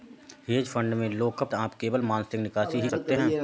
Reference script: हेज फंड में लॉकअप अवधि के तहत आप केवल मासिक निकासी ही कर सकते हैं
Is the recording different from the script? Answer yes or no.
yes